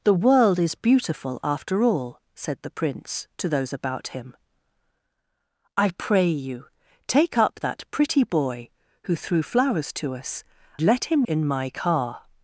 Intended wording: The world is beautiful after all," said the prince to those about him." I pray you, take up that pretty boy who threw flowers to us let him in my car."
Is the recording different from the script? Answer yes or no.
no